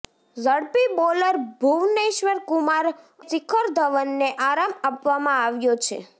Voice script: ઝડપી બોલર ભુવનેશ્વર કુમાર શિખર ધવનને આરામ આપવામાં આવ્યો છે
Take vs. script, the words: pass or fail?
pass